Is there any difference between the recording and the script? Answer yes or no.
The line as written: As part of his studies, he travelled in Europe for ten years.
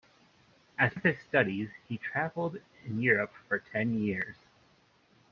yes